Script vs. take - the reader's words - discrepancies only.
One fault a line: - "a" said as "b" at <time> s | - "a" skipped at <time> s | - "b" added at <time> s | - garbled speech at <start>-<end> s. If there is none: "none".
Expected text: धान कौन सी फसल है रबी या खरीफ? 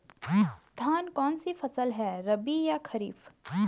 none